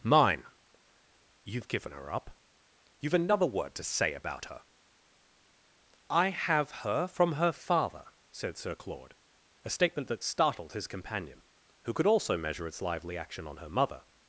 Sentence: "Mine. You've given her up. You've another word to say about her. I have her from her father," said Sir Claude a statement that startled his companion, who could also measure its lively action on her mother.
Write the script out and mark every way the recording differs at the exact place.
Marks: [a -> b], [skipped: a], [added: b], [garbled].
"Mine. You've given her up. You've another word to say about her. I have her from her father," said Sir Claude a statement that startled his companion, who could also measure its lively action on her mother.